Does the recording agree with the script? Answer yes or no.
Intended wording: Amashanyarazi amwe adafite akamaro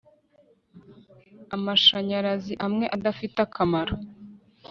yes